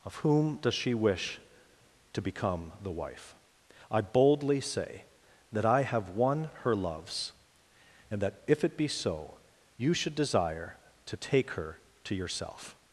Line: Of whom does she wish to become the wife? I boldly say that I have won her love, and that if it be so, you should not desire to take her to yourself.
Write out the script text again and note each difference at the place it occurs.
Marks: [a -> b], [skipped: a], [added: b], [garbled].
Of whom does she wish to become the wife? I boldly say that I have won her [love, -> loves] and that if it be so, you should [skipped: not] desire to take her to yourself.